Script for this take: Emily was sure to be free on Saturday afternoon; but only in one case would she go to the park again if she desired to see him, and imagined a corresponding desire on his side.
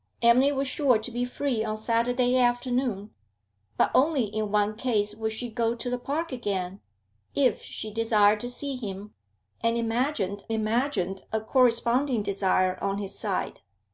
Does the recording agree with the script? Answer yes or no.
no